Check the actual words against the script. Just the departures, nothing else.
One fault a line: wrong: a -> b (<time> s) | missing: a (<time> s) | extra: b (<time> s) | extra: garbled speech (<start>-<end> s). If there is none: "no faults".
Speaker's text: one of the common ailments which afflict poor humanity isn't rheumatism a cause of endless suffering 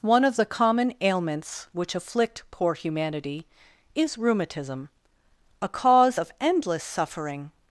wrong: isn't -> is (3.9 s)